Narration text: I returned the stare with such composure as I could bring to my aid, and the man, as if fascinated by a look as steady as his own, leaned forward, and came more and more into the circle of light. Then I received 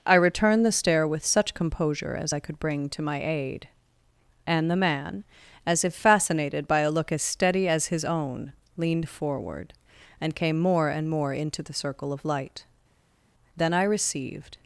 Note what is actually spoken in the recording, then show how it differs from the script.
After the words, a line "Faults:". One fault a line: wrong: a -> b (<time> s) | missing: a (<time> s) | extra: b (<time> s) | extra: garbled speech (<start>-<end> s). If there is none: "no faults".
I returned the stare with such composure as I could bring to my aid, and the man, as if fascinated by a look as steady as his own, leaned forward, and came more and more into the circle of light. Then I received
Faults:
no faults